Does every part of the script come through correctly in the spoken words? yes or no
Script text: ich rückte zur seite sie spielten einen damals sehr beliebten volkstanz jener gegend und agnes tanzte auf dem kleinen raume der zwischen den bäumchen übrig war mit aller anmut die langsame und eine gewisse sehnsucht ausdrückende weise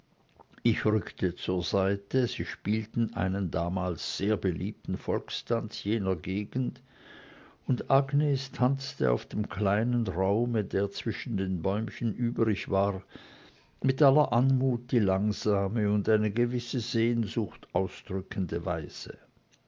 yes